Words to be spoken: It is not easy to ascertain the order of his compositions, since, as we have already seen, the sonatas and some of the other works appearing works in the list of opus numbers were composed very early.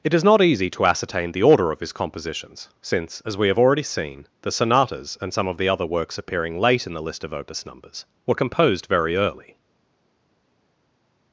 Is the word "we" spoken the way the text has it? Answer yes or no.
yes